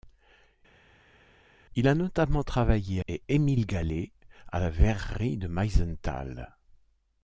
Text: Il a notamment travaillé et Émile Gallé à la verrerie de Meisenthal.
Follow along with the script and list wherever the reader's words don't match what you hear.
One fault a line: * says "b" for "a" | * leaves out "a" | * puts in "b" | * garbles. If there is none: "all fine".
all fine